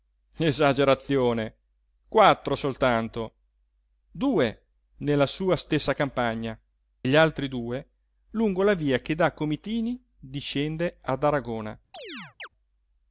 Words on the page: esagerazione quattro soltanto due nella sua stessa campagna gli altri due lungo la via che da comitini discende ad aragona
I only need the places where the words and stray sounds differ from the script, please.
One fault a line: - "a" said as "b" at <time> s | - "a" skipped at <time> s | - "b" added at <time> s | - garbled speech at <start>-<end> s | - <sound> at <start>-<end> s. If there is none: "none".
- chirp at 11.9-12.5 s